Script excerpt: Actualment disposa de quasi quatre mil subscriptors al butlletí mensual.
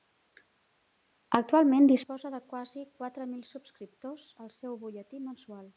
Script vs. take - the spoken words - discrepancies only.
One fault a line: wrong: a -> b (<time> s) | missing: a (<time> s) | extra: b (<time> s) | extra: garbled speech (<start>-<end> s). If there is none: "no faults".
extra: seu (4.6 s)